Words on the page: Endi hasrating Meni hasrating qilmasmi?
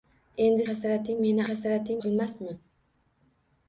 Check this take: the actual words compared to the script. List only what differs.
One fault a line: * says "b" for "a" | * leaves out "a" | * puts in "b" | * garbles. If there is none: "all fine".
all fine